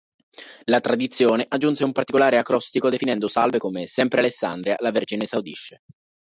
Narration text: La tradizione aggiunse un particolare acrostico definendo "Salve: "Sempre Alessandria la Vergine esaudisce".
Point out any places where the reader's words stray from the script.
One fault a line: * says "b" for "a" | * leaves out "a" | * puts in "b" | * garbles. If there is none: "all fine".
* puts in "come"